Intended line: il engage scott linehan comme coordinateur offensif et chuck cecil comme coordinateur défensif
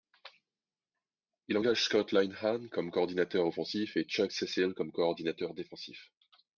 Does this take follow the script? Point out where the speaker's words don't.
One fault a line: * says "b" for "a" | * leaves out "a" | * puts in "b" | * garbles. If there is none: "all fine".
all fine